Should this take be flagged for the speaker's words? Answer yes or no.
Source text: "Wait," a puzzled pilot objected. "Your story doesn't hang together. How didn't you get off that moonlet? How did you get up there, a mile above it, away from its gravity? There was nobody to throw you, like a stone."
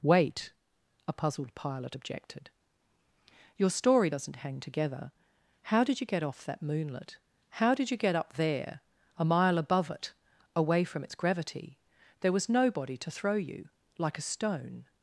yes